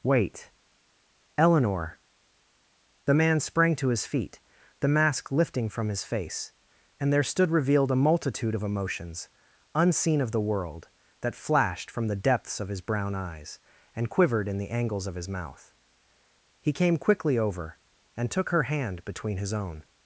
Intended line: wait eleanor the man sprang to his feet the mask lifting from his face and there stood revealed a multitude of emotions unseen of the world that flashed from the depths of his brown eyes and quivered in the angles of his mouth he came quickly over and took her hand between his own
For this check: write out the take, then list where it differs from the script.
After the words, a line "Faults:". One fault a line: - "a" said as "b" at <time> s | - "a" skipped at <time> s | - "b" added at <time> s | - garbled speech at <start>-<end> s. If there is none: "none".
wait eleanor the man sprang to his feet the mask lifting from his face and there stood revealed a multitude of emotions unseen of the world that flashed from the depths of his brown eyes and quivered in the angles of his mouth he came quickly over and took her hand between his own
Faults:
none